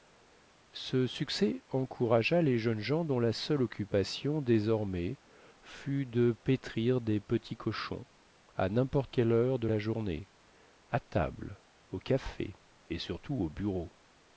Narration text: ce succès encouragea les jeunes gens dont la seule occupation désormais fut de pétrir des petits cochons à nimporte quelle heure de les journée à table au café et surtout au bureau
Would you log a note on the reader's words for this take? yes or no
yes